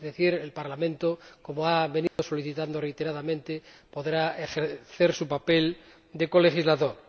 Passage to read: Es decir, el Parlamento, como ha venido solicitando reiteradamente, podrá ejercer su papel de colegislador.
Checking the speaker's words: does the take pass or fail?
pass